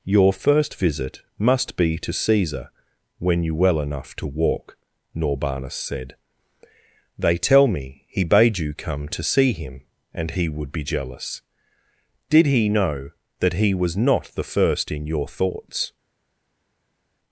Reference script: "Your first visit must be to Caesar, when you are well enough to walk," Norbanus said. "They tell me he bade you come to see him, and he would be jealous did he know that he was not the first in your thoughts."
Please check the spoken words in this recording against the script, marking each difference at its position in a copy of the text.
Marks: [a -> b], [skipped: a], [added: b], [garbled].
"Your first visit must be to Caesar, when you [skipped: are] well enough to walk," Norbanus said. "They tell me he bade you come to see him, and he would be jealous did he know that he was not the first in your thoughts."